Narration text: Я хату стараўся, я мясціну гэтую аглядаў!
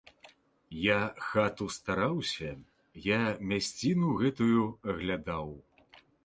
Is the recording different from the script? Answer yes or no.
no